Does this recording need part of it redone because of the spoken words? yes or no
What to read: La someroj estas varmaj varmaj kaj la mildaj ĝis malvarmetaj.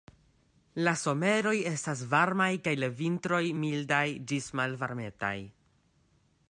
yes